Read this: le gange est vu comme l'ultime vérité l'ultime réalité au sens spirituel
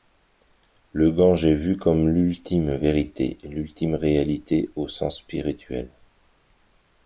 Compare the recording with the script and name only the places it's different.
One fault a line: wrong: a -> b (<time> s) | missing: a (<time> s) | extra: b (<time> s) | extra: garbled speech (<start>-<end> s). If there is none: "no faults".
no faults